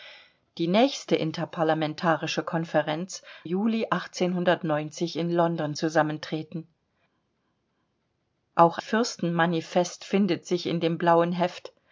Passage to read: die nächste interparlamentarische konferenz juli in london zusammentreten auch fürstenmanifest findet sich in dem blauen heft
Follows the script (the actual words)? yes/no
yes